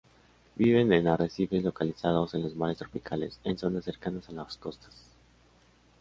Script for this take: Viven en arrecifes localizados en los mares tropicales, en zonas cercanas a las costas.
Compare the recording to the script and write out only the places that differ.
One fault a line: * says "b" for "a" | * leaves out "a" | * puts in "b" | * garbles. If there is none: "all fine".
all fine